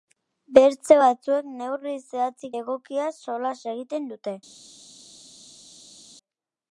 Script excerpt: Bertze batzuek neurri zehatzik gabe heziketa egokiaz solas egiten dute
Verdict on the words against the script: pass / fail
fail